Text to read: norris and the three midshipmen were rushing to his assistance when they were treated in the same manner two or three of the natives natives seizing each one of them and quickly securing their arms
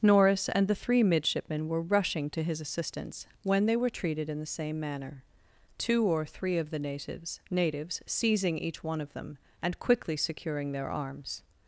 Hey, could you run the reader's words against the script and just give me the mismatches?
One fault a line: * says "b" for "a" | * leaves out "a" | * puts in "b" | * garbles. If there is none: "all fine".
all fine